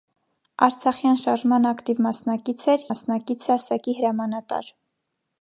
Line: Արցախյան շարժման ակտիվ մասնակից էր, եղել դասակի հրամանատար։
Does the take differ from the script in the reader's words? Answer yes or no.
yes